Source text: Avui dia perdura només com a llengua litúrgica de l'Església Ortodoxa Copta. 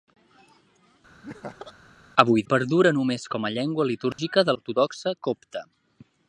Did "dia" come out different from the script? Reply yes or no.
yes